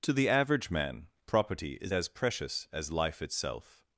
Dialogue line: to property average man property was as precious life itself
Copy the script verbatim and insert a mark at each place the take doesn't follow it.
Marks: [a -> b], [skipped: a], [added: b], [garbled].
to [property -> the] average man property [was -> is] as precious [added: as] life itself